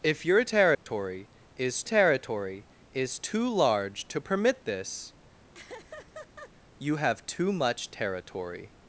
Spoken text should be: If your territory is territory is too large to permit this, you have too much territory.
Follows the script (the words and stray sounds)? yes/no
no